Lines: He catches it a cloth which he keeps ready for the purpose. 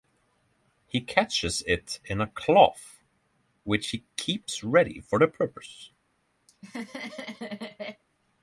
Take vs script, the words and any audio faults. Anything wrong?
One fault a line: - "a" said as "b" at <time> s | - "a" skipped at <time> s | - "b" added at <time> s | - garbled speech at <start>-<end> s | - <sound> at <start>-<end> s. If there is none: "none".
- "in" added at 2.0 s
- laugh at 6.5-8.0 s